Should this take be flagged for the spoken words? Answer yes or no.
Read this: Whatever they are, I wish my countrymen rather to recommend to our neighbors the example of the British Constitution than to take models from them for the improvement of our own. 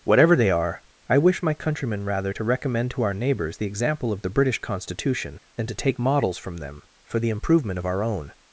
no